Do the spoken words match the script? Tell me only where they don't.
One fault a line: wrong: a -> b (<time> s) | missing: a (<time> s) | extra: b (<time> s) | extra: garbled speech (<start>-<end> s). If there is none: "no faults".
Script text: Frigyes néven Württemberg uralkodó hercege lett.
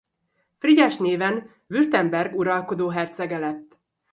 no faults